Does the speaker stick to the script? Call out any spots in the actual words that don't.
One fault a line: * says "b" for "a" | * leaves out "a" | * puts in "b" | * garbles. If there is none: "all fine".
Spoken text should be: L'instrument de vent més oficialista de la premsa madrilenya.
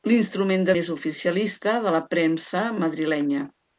* leaves out "vent"